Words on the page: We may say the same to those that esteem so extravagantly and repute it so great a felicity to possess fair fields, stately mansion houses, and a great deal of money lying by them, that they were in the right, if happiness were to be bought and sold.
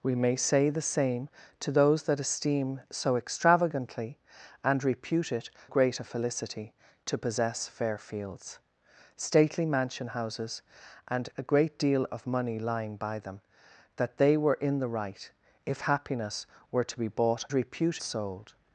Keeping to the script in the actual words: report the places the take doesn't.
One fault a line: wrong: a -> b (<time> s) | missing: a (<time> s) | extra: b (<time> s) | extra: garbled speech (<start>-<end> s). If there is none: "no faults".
missing: so (5.5 s)
wrong: and -> repute (17.5 s)